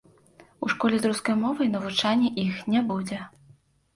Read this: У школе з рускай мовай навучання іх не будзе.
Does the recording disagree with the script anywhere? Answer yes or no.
no